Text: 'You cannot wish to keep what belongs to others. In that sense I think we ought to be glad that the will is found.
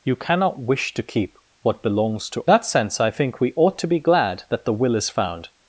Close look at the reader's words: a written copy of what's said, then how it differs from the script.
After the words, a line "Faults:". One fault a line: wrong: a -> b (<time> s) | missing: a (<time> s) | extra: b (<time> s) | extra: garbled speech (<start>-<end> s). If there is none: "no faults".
'You cannot wish to keep what belongs to that sense I think we ought to be glad that the will is found.
Faults:
missing: others In (2.5 s)